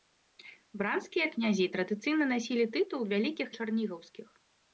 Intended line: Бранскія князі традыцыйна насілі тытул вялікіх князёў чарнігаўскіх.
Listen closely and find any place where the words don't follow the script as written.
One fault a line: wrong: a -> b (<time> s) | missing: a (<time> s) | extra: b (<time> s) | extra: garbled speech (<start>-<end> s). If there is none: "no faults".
missing: князёў (3.5 s)